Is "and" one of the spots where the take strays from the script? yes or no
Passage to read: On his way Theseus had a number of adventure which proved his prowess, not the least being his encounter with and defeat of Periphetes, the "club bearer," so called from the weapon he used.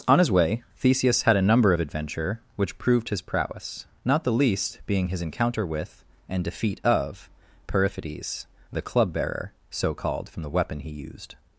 no